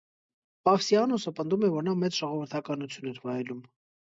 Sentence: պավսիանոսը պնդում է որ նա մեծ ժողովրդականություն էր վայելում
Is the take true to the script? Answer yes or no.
yes